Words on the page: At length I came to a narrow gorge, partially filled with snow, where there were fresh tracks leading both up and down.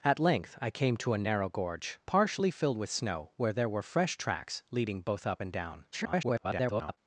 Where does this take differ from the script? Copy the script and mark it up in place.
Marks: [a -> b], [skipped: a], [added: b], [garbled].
At length I came to a narrow gorge, partially filled with snow, where there were fresh tracks leading both up and down. [garbled]